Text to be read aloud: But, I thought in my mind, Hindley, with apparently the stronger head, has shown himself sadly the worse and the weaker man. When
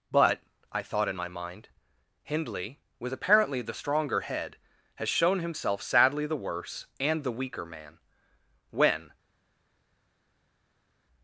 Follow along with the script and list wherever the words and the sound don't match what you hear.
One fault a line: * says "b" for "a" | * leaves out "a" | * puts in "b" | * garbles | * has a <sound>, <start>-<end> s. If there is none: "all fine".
all fine